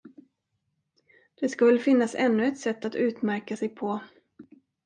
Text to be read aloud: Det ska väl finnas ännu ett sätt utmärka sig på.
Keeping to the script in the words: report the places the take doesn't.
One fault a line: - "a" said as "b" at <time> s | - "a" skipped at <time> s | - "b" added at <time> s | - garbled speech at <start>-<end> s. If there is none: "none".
- "att" added at 2.9 s